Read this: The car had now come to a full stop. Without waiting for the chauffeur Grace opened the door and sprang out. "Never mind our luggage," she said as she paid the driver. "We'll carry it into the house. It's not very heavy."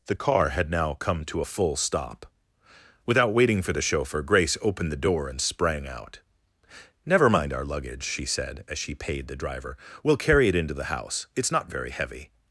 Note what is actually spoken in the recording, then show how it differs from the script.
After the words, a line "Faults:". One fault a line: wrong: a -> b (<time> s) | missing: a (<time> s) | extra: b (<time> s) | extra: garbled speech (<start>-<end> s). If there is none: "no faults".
The car had now come to a full stop. Without waiting for the chauffeur Grace opened the door and sprang out. "Never mind our luggage," she said as she paid the driver. "We'll carry it into the house. It's not very heavy."
Faults:
no faults